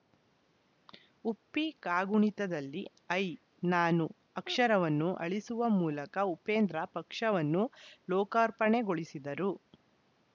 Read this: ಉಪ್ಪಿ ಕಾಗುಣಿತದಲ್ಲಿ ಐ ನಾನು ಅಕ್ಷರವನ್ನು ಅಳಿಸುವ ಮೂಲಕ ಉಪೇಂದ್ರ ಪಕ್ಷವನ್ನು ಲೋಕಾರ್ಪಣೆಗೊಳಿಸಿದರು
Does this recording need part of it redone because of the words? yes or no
no